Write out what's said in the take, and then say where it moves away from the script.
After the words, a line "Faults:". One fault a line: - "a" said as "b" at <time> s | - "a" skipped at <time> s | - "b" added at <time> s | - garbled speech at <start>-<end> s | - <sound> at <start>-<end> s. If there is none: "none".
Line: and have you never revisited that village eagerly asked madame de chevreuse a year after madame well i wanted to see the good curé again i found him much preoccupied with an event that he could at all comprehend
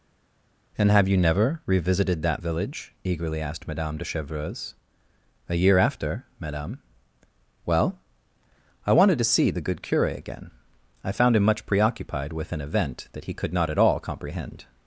and have you never revisited that village eagerly asked madame de chevreuse a year after madame well i wanted to see the good curé again i found him much preoccupied with an event that he could not at all comprehend
Faults:
- "not" added at 13.5 s